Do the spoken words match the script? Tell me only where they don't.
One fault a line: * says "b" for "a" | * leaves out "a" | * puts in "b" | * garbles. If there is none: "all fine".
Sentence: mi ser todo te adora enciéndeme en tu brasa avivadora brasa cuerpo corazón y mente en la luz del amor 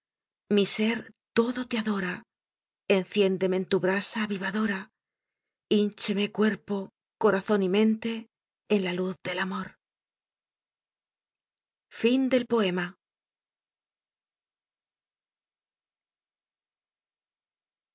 * says "híncheme" for "brasa"